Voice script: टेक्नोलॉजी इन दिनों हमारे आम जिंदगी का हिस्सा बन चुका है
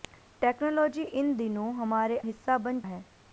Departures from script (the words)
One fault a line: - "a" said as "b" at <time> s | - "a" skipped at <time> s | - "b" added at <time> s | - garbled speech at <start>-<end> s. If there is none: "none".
- "आम जिंदगी का" skipped at 2.2 s
- "चुका" skipped at 2.8 s